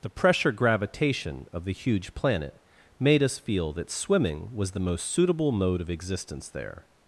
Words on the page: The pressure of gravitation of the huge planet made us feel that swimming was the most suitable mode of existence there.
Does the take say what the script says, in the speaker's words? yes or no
no